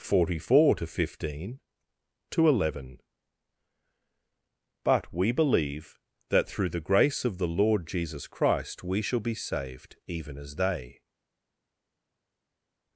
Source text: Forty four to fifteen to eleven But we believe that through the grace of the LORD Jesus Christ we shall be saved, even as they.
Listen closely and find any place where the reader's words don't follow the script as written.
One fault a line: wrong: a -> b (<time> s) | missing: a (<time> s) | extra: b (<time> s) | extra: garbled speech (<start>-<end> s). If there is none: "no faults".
no faults